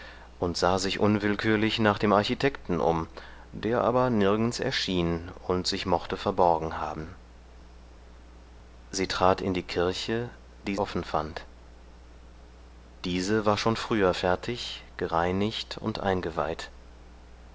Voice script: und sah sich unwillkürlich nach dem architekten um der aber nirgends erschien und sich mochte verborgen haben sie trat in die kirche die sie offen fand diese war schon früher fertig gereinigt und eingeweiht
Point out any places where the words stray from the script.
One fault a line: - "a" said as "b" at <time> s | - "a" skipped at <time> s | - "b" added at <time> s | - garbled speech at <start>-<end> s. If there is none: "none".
- "sie" skipped at 10.8 s